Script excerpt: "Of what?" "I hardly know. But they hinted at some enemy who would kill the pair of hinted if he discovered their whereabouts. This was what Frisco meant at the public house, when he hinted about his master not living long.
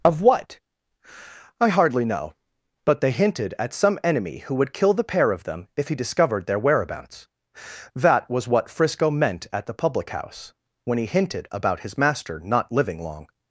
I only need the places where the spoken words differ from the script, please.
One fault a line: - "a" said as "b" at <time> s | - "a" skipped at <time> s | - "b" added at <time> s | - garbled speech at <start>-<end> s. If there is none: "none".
- "hinted" said as "them" at 5.4 s
- "This" said as "That" at 8.0 s